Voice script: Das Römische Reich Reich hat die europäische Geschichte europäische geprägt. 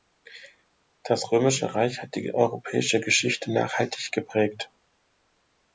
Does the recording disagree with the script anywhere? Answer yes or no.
yes